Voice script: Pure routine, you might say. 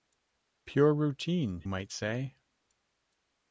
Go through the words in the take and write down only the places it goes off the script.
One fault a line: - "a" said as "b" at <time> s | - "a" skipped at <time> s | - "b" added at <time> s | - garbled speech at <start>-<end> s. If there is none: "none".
- "you" skipped at 1.7 s